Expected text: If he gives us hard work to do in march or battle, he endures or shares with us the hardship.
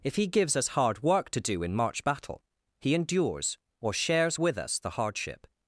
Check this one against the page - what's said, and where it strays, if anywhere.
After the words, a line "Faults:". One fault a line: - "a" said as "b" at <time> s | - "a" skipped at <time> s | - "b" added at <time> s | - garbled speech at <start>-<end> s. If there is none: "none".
If he gives us hard work to do in march battle, he endures or shares with us the hardship.
Faults:
- "or" skipped at 2.0 s